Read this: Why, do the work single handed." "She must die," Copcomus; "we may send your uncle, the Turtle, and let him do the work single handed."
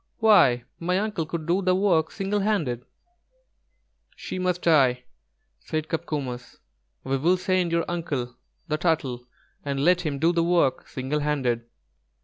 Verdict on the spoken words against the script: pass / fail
fail